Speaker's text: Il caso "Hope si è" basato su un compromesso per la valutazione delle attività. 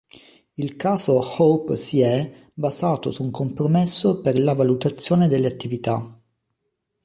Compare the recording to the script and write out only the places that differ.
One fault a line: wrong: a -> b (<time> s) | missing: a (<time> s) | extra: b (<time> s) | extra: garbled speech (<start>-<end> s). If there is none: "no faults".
no faults